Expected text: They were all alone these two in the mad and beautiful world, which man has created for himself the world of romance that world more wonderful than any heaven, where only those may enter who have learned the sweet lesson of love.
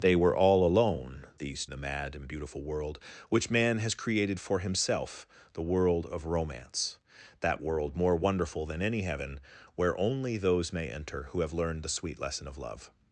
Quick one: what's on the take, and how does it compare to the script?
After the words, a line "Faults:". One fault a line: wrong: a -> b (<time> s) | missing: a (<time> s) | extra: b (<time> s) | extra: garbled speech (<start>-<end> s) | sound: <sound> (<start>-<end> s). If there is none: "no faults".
They were all alone these the mad and beautiful world, which man has created for himself the world of romance that world more wonderful than any heaven, where only those may enter who have learned the sweet lesson of love.
Faults:
missing: two in (1.6 s)